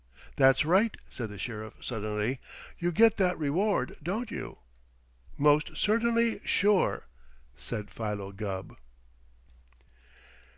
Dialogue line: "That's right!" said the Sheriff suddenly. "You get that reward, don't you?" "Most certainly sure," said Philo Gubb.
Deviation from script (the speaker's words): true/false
false